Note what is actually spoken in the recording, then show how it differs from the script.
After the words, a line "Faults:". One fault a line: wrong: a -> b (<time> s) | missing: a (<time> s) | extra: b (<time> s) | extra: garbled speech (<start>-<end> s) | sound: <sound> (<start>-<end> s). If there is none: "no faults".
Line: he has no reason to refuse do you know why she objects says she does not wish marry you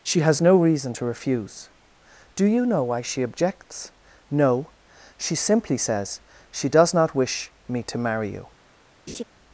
she has no reason to refuse do you know why she objects no she simply says she does not wish me to marry you
Faults:
wrong: he -> she (0.0 s)
extra: no she simply (4.3 s)
extra: me to (7.7 s)
sound: laugh (9.1-9.2 s)